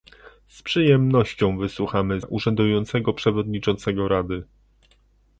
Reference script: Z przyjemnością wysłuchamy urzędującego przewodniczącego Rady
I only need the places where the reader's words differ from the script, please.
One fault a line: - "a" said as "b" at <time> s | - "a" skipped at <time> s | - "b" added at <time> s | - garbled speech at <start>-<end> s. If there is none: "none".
none